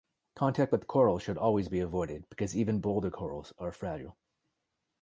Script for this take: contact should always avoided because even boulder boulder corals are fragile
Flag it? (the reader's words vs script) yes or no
yes